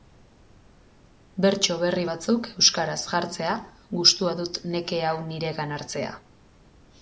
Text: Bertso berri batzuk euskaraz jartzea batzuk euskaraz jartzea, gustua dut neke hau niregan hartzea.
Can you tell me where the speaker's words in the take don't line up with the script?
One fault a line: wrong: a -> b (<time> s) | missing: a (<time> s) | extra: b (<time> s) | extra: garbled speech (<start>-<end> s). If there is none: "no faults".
missing: batzuk euskaraz jartzea (3.6 s)